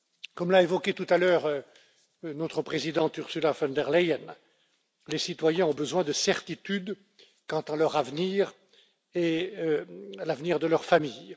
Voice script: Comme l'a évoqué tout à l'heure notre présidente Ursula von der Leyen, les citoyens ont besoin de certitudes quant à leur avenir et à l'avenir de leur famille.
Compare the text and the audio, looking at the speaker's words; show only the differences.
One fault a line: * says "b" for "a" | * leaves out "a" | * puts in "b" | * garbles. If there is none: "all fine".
all fine